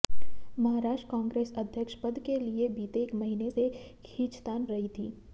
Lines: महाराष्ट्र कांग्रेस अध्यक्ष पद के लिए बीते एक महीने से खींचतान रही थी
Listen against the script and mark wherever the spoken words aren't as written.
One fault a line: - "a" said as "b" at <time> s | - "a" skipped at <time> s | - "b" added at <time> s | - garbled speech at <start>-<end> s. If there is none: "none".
none